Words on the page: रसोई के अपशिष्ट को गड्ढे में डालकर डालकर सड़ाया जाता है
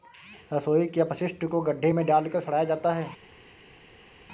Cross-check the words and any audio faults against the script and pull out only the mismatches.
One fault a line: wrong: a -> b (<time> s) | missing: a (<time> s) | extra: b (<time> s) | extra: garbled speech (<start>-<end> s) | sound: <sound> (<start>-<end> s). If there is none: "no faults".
missing: डालकर (2.4 s)